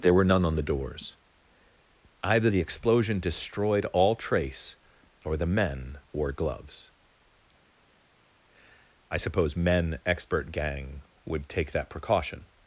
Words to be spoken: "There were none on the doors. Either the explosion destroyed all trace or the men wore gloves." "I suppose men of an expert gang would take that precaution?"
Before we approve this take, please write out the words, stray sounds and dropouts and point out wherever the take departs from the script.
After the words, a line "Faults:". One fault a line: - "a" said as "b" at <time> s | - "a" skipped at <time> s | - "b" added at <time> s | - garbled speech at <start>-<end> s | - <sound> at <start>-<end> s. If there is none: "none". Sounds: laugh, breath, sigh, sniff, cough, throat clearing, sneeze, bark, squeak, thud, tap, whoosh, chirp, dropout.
"There were none on the doors. Either the explosion destroyed all trace or the men wore gloves." "I suppose men expert gang would take that precaution?"
Faults:
- "of an" skipped at 10.0 s